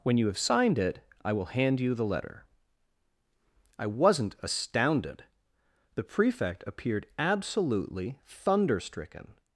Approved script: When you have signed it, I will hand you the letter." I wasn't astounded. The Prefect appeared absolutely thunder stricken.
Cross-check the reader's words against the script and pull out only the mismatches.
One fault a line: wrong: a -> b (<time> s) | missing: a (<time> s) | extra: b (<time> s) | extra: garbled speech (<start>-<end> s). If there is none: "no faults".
no faults